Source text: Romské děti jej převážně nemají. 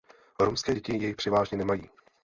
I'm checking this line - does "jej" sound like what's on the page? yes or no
yes